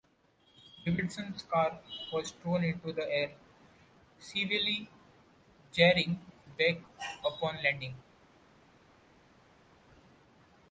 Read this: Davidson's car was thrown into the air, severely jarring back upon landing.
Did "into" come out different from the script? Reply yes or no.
no